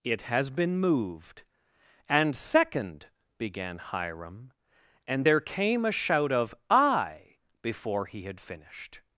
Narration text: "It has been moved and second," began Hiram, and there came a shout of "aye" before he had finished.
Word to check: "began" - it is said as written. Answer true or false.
true